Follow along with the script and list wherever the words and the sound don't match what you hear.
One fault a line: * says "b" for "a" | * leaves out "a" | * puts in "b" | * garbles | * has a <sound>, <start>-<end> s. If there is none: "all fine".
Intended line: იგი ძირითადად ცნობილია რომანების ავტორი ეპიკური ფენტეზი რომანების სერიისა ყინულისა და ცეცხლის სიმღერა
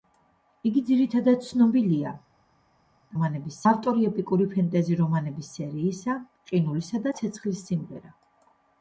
all fine